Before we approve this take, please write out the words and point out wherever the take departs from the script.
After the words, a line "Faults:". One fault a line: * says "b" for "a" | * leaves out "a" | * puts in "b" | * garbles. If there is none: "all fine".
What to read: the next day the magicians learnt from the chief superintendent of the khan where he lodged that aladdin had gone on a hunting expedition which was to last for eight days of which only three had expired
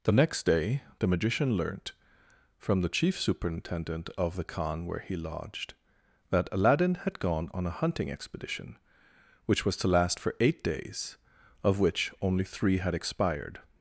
the next day the magician learnt from the chief superintendent of the khan where he lodged that aladdin had gone on a hunting expedition which was to last for eight days of which only three had expired
Faults:
* says "magician" for "magicians"